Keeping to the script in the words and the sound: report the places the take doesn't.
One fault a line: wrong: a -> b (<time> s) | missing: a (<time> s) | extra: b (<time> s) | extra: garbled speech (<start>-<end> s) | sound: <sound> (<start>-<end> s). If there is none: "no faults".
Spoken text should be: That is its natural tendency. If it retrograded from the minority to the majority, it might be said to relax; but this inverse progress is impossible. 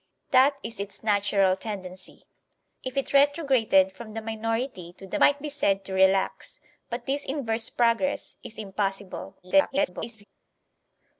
missing: majority it (5.2 s)
extra: garbled speech (9.4-10.2 s)